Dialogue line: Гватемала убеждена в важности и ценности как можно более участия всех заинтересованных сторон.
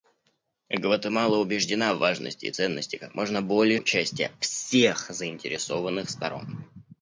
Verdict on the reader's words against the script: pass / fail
pass